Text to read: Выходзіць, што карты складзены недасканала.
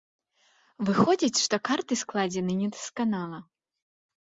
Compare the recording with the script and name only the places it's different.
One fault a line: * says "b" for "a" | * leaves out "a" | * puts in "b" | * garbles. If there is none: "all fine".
all fine